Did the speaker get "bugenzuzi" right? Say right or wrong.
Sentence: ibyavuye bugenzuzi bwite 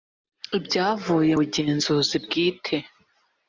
right